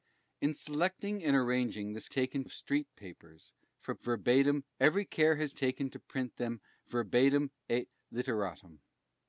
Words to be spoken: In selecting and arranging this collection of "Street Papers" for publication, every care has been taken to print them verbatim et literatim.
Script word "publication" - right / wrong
wrong